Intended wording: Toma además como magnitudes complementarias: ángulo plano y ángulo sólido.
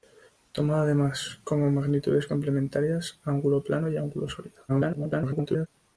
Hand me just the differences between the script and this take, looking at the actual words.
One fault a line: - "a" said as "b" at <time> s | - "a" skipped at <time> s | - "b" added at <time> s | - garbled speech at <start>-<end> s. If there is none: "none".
- garbled speech at 4.7-5.7 s